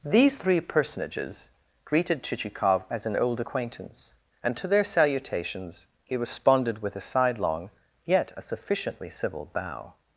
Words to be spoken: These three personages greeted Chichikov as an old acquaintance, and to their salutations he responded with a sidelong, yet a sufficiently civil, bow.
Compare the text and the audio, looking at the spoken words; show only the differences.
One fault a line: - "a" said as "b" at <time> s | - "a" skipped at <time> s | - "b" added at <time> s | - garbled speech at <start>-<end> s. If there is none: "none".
none